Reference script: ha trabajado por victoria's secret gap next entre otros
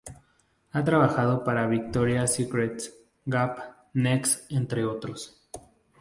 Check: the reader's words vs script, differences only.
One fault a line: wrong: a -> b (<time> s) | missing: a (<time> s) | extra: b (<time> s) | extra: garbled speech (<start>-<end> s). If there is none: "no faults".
wrong: por -> para (1.4 s)